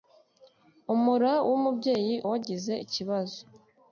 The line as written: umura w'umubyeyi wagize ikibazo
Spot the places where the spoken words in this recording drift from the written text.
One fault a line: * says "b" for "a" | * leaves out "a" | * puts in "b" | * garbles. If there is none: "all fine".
all fine